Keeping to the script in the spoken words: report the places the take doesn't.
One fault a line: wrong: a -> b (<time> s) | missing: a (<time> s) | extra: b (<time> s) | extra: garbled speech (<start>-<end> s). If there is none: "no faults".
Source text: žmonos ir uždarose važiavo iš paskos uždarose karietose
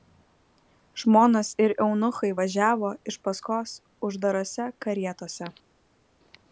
wrong: uždarose -> eunuchai (1.9 s)